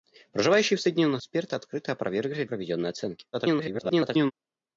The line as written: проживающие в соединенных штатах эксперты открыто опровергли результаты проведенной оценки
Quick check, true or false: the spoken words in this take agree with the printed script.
false